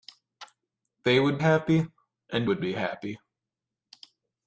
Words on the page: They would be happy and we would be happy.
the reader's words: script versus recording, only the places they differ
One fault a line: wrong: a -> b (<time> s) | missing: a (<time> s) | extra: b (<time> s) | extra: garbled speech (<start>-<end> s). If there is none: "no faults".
missing: be (1.4 s)
missing: we (2.5 s)